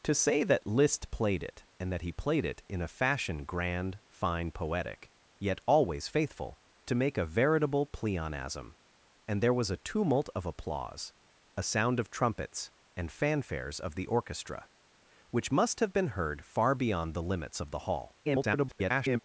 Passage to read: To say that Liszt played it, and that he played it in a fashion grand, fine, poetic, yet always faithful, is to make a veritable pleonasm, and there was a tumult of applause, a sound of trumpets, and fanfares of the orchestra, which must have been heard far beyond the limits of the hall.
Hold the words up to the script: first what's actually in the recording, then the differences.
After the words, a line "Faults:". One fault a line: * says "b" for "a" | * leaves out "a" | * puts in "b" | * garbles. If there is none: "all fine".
To say that Liszt played it, and that he played it in a fashion grand, fine, poetic, yet always faithful, to make a veritable pleonasm, and there was a tumult of applause, a sound of trumpets, and fanfares of the orchestra, which must have been heard far beyond the limits of the hall. [garbled]
Faults:
* leaves out "is"
* garbles